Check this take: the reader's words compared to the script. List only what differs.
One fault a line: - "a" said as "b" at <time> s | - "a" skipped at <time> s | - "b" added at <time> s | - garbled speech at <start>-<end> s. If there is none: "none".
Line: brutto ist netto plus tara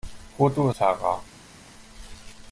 - "ist netto plus" skipped at 0.7 s